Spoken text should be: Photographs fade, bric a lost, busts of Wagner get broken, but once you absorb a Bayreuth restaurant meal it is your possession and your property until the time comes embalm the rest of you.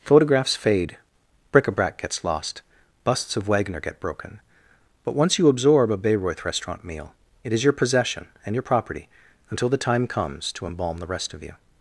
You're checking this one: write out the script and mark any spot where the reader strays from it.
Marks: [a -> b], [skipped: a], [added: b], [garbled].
Photographs fade, bric a [added: brac gets] lost, busts of Wagner get broken, but once you absorb a Bayreuth restaurant meal it is your possession and your property until the time comes [added: to] embalm the rest of you.